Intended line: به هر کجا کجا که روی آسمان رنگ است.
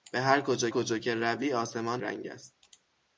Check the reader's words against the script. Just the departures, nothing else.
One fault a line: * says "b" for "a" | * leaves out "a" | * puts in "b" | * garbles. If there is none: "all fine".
all fine